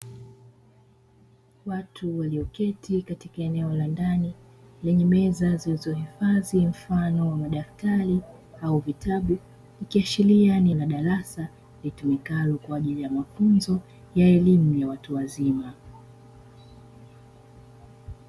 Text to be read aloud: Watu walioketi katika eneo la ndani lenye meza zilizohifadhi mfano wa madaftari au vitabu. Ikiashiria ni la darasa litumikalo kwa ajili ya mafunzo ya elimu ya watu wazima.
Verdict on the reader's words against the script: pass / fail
pass